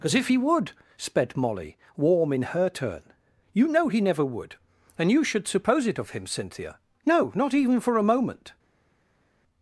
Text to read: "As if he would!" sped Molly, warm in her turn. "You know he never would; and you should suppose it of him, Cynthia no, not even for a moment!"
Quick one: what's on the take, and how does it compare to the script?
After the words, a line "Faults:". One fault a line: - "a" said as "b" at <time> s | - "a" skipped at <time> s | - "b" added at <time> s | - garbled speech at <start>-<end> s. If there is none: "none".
"As if he would!" sped Molly, warm in her turn. "You know he never would; and you should suppose it of him, Cynthia no, not even for a moment!"
Faults:
none